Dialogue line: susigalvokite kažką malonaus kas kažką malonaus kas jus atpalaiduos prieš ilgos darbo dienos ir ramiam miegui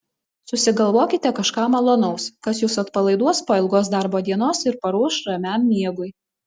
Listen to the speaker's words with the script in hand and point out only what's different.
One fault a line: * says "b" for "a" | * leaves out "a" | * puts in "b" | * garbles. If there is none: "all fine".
* leaves out "kažką malonaus kas"
* says "po" for "prieš"
* puts in "paruoš"